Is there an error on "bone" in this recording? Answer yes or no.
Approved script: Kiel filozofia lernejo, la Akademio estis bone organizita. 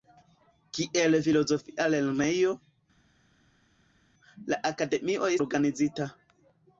yes